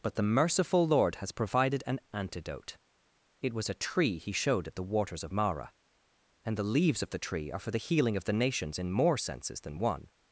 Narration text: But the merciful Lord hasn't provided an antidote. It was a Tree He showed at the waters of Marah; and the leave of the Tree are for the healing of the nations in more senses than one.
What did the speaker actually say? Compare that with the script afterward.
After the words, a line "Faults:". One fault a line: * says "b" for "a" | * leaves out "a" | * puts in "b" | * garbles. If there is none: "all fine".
But the merciful Lord has provided an antidote. It was a Tree He showed at the waters of Marah; and the leaves of the Tree are for the healing of the nations in more senses than one.
Faults:
* says "has" for "hasn't"
* says "leaves" for "leave"